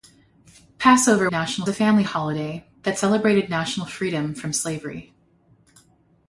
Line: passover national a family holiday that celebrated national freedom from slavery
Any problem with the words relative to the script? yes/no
no